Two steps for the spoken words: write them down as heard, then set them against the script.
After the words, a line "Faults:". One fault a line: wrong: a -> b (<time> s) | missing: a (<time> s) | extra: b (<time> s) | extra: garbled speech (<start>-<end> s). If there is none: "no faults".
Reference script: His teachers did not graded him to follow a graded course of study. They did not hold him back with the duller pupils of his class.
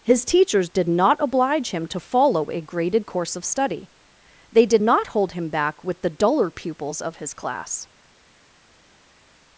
His teachers did not oblige him to follow a graded course of study. They did not hold him back with the duller pupils of his class.
Faults:
wrong: graded -> oblige (1.2 s)